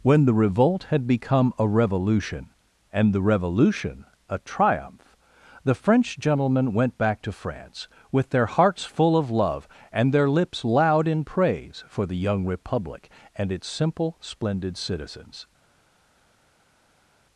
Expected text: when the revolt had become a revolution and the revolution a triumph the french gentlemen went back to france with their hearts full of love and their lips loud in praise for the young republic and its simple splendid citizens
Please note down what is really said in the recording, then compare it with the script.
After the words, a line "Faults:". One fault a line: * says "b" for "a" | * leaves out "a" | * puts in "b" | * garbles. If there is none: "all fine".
when the revolt had become a revolution and the revolution a triumph the french gentlemen went back to france with their hearts full of love and their lips loud in praise for the young republic and its simple splendid citizens
Faults:
all fine